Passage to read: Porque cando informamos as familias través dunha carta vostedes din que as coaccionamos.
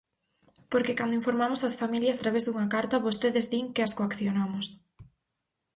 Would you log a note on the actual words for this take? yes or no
no